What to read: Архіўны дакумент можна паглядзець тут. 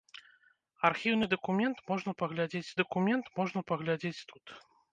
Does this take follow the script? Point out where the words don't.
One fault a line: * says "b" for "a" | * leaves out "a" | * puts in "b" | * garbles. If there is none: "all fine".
* puts in "дакумент можна паглядзець"